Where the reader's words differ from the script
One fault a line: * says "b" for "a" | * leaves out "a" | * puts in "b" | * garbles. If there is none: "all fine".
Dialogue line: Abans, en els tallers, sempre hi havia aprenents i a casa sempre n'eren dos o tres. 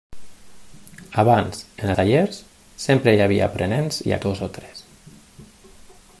* leaves out "els"
* leaves out "casa sempre n'eren"